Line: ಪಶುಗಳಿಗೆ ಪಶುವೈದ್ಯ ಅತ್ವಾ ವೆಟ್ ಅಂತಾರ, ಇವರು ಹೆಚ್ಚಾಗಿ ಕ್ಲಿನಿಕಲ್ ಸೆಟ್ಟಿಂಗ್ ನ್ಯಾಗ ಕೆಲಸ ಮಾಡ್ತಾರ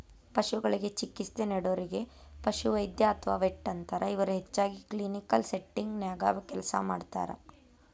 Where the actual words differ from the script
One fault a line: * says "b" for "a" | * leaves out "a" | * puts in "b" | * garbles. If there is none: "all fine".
* puts in "ಚಿಕಿತ್ಸೆ ನೇಡೋರಿಗೆ"